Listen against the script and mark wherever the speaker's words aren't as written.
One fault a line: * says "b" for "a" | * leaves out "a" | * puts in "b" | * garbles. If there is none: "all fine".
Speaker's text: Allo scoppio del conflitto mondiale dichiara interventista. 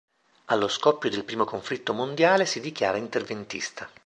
* puts in "primo"
* puts in "si"